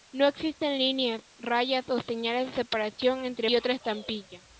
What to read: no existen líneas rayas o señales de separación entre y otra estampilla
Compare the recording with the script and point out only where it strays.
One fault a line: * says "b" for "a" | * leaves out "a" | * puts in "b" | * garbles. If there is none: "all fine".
all fine